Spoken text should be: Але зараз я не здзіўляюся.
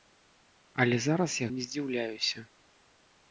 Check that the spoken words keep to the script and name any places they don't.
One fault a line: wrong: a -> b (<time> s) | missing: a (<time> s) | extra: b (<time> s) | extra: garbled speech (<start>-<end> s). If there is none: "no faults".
no faults